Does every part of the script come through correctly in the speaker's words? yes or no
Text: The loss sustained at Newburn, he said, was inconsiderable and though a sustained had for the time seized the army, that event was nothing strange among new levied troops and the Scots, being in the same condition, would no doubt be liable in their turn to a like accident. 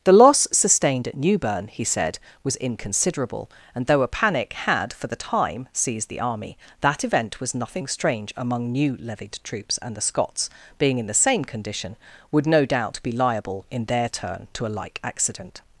no